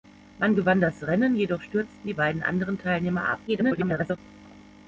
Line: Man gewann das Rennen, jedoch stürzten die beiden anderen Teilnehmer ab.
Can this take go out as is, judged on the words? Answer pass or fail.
fail